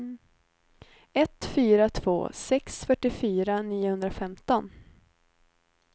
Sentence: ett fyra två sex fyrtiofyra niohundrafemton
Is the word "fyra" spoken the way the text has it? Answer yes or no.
yes